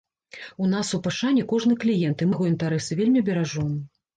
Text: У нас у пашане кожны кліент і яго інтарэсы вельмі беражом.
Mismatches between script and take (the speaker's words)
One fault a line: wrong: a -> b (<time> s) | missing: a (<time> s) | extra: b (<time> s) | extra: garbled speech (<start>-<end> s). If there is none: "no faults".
no faults